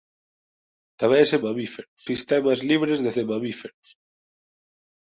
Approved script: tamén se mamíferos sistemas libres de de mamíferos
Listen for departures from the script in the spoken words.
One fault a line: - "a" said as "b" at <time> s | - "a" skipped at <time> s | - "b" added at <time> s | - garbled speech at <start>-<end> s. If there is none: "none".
none